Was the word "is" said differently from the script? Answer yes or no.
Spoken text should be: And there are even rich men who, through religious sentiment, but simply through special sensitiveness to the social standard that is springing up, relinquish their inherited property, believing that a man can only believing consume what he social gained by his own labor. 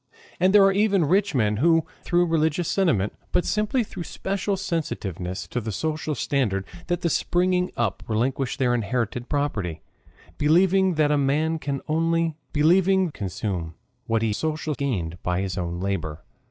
no